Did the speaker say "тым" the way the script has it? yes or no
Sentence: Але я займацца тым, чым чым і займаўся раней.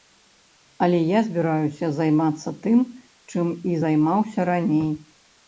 yes